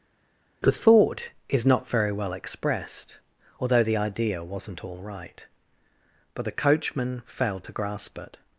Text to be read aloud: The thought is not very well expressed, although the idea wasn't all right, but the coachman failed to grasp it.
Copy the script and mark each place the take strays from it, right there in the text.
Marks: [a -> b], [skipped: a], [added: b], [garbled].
The thought is not very well expressed, although the idea wasn't all right, but the coachman failed to grasp it.